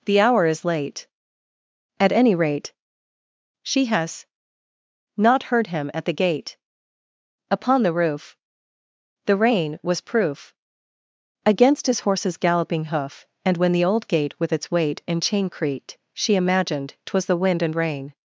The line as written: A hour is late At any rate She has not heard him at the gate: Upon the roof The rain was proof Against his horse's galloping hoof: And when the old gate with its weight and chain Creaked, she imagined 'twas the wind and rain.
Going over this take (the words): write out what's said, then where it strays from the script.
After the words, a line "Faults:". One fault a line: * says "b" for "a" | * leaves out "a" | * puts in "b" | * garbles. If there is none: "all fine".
The hour is late At any rate She has not heard him at the gate: Upon the roof The rain was proof Against his horse's galloping hoof: And when the old gate with its weight and chain Creaked, she imagined 'twas the wind and rain.
Faults:
* says "The" for "A"